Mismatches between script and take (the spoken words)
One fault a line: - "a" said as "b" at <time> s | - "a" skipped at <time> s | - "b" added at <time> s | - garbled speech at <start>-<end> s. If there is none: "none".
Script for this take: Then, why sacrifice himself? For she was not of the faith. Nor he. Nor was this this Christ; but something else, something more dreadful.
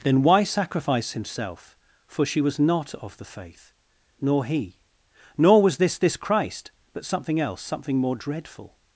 none